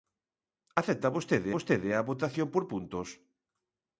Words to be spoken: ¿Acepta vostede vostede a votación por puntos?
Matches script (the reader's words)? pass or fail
pass